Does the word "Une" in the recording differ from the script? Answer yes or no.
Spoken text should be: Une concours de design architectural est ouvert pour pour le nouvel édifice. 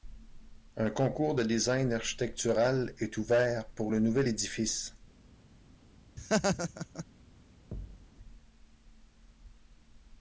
yes